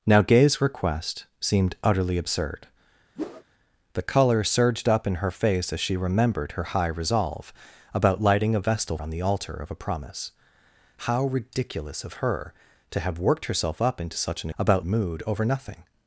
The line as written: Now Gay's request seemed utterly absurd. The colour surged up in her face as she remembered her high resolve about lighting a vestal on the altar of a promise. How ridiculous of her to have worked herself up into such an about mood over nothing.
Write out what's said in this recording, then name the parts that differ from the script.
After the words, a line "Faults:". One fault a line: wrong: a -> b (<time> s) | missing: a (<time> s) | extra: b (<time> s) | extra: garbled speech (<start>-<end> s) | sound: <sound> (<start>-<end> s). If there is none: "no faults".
Now Gay's request seemed utterly absurd. The colour surged up in her face as she remembered her high resolve about lighting a vestal on the altar of a promise. How ridiculous of her to have worked herself up into such an about mood over nothing.
Faults:
sound: whoosh (3.2-3.4 s)